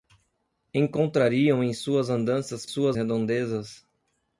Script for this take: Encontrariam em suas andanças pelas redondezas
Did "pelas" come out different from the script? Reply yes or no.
yes